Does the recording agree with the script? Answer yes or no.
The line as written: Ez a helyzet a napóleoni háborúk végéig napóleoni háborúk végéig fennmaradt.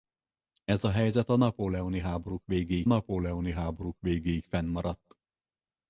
yes